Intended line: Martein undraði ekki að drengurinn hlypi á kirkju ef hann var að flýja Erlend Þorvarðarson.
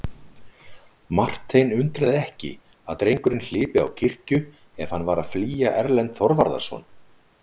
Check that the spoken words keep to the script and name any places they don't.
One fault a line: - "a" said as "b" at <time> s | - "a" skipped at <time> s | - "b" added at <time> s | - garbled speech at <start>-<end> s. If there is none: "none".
none